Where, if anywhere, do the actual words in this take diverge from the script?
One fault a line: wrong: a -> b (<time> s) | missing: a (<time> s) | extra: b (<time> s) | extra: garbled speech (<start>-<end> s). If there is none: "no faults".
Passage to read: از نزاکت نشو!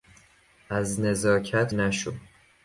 no faults